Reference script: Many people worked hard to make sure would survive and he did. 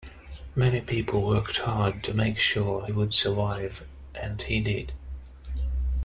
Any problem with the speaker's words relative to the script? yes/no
no